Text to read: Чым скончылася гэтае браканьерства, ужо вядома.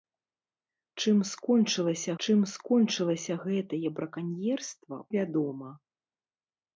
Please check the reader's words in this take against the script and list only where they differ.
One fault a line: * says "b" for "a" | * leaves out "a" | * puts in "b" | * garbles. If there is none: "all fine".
* puts in "чым скончылася"
* leaves out "ужо"